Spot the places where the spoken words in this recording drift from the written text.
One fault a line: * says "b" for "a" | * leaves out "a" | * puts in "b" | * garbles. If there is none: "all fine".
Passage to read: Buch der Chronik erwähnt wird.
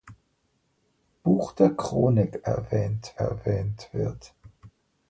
* puts in "erwähnt"